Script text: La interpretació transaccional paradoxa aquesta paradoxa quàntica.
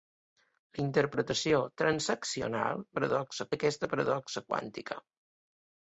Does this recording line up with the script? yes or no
yes